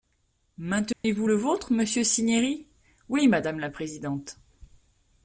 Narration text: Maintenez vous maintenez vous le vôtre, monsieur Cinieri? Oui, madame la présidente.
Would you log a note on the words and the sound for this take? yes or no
yes